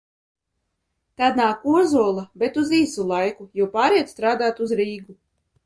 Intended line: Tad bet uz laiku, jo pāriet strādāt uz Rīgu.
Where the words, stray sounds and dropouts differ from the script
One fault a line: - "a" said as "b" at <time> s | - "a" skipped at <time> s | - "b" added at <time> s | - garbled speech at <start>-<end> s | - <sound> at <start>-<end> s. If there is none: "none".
- "nāk Ozola" added at 1.4 s
- "īsu" added at 2.8 s